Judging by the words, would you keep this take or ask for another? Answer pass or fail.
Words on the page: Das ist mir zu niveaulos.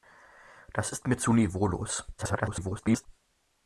fail